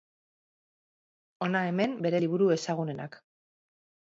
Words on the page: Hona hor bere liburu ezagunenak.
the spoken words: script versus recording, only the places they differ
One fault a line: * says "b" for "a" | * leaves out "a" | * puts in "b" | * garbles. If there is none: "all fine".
* says "hemen" for "hor"